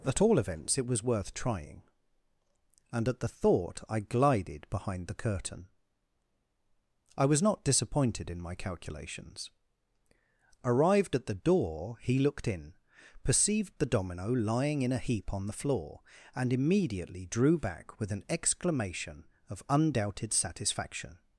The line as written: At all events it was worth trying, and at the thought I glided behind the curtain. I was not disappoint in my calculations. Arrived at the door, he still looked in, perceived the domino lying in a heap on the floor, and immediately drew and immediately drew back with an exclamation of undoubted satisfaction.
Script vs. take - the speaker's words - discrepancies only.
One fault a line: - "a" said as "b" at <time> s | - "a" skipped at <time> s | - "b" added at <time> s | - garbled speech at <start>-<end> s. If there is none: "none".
- "disappoint" said as "disappointed" at 7.6 s
- "still" skipped at 12.2 s
- "and immediately drew" skipped at 17.6 s